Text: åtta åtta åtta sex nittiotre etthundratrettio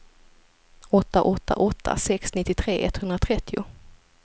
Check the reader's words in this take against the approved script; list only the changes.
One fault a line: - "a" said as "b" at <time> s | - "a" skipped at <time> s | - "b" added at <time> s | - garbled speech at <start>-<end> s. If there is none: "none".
none